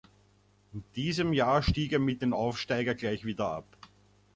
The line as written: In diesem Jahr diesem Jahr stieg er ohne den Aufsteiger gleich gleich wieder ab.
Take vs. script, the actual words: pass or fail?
fail